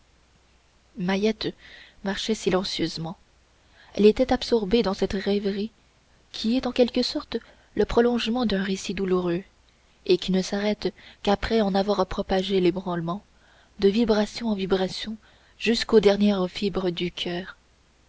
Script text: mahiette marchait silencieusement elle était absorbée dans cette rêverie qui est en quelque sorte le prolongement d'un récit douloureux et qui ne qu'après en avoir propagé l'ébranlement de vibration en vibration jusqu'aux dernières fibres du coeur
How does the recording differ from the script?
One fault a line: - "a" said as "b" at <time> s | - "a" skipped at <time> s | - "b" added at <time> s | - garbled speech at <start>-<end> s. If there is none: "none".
- "s'arrête" added at 10.4 s